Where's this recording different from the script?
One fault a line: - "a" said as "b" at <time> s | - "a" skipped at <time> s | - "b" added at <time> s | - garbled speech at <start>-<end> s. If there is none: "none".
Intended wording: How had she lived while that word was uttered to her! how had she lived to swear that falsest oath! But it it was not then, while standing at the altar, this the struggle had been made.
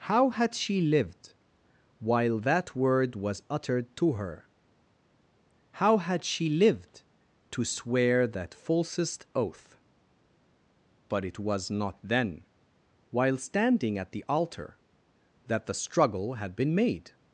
- "it" skipped at 11.4 s
- "this" said as "that" at 15.5 s